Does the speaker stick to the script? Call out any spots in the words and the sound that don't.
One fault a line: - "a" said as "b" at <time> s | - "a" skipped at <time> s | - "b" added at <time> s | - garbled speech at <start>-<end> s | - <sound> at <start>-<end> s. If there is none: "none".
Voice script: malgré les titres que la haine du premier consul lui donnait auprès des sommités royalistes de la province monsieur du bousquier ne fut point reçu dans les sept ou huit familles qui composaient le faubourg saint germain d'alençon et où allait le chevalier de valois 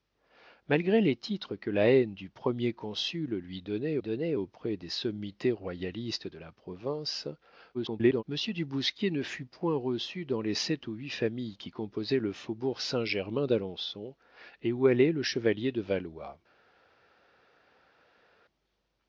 - "donnait" added at 4.0 s
- garbled speech at 7.7-8.2 s